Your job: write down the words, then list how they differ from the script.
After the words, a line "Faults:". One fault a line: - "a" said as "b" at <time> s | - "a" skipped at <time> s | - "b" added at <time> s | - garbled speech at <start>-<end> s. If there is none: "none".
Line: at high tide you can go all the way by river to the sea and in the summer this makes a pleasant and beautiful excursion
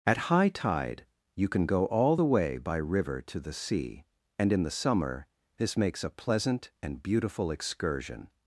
at high tide you can go all the way by river to the sea and in the summer this makes a pleasant and beautiful excursion
Faults:
none